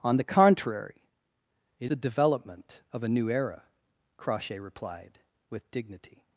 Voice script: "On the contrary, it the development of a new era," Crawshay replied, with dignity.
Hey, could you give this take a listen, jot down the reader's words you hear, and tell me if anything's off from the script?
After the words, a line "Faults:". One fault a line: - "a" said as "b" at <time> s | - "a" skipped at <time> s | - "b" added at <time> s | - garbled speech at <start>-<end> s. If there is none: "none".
"On the contrary, it the development of a new era," Crawshay replied, with dignity.
Faults:
none